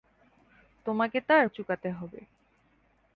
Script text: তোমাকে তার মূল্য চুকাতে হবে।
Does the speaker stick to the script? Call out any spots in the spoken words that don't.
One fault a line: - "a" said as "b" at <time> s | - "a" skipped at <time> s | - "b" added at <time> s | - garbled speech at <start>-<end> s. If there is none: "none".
- "মূল্য" skipped at 1.4 s